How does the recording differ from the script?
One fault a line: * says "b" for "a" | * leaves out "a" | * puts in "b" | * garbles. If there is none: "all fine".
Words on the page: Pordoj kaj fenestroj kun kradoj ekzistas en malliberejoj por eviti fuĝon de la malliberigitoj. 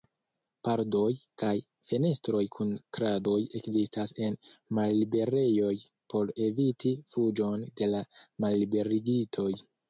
all fine